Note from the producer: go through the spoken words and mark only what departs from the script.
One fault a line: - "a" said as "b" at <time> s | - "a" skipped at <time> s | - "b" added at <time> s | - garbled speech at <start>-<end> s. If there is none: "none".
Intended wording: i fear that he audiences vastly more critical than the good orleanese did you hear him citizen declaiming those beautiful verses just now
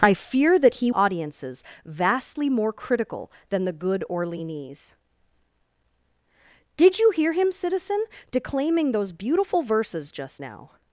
none